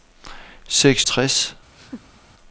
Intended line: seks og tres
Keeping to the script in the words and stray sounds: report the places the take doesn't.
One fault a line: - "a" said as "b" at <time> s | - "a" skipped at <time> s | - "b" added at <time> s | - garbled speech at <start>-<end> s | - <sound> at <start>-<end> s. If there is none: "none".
- laugh at 1.8-2.2 s